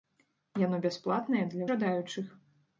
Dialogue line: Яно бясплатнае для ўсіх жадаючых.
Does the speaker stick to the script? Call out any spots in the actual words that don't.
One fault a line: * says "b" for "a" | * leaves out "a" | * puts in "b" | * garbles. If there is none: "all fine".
* leaves out "ўсіх"